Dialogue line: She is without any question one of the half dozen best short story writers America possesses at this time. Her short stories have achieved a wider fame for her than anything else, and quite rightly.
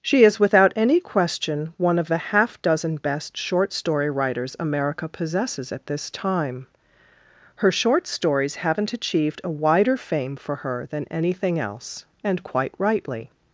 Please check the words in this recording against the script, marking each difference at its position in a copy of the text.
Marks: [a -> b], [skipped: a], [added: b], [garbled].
She is without any question one of the half dozen best short story writers America possesses at this time. Her short stories [have -> haven't] achieved a wider fame for her than anything else, and quite rightly.